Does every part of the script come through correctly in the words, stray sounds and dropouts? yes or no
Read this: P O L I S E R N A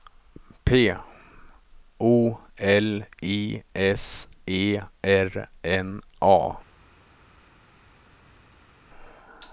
yes